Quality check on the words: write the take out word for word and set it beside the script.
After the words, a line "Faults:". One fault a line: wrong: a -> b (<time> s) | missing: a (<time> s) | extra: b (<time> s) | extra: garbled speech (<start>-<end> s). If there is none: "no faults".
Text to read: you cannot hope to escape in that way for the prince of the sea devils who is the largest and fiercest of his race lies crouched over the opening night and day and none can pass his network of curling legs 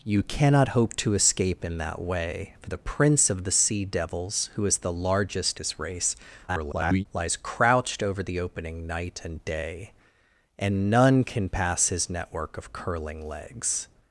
you cannot hope to escape in that way for the prince of the sea devils who is the largest his race [garbled] lies crouched over the opening night and day and none can pass his network of curling legs
Faults:
missing: and fiercest of (5.6 s)
extra: garbled speech (6.5-7.1 s)